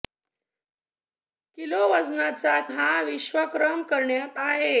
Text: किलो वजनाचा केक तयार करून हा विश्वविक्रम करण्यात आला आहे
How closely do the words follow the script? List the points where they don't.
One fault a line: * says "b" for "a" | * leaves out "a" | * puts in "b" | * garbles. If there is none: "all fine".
* leaves out "केक तयार करून"
* leaves out "आला"